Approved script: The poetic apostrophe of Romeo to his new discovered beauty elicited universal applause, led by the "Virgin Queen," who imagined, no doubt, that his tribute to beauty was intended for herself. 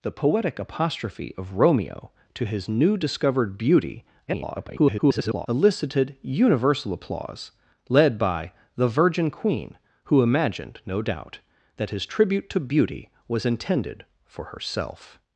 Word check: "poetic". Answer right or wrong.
right